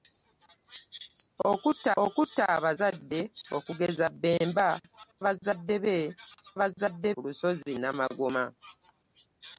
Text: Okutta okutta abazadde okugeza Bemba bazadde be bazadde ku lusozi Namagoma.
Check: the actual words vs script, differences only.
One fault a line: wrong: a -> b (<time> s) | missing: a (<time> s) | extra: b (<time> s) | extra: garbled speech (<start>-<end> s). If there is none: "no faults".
no faults